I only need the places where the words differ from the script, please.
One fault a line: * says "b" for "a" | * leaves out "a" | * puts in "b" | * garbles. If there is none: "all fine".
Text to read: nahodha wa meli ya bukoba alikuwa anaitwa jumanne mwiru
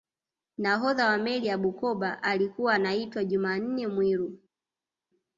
all fine